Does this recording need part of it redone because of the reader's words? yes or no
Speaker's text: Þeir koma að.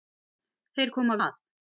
no